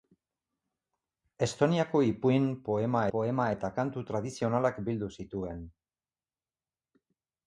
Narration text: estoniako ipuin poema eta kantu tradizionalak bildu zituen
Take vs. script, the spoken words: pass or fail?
fail